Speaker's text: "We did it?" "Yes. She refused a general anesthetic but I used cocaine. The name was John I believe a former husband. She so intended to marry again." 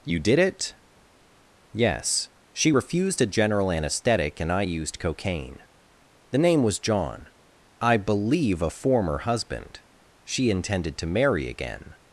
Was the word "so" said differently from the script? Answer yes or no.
yes